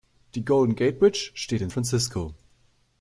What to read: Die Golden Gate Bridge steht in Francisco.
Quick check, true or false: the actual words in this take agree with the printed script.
true